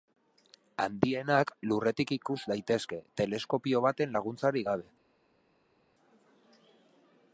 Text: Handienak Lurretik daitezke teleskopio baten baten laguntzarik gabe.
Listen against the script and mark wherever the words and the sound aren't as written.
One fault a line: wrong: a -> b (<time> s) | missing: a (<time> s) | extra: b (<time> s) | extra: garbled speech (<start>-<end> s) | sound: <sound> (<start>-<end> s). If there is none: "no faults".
extra: ikus (2.1 s)
missing: baten (4.2 s)